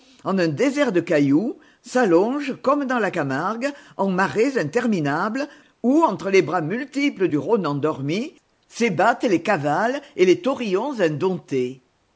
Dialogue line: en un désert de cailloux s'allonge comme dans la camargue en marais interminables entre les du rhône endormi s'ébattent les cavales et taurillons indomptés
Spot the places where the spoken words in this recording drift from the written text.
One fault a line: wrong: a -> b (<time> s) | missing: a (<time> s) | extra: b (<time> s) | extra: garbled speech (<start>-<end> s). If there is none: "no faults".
extra: où (5.8 s)
extra: bras multiples (6.4 s)
extra: les (10.3 s)